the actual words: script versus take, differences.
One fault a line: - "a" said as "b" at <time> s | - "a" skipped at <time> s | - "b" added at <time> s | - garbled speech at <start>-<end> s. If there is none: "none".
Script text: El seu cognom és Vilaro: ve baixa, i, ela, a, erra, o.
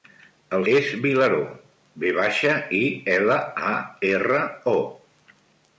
- "seu cognom" skipped at 0.6 s